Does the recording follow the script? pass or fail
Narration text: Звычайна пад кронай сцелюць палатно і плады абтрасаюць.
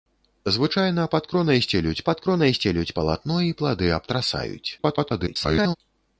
fail